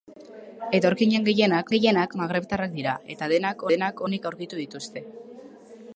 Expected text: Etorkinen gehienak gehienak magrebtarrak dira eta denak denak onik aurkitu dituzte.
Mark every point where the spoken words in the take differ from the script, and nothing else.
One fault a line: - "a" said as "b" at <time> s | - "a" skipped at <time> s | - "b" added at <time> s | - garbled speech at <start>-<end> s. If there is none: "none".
none